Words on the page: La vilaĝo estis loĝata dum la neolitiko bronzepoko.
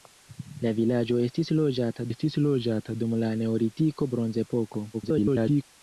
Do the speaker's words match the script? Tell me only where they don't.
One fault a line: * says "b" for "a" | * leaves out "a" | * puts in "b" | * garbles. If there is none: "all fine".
* puts in "estis loĝata"
* garbles